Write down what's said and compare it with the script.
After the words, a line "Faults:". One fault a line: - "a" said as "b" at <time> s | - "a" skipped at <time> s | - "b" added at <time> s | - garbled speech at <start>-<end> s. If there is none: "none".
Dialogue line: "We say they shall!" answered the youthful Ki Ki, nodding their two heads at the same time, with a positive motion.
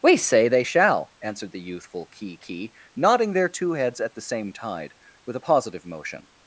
"We say they shall!" answered the youthful Ki Ki, nodding their two heads at the same tide, with a positive motion.
Faults:
- "time" said as "tide" at 4.5 s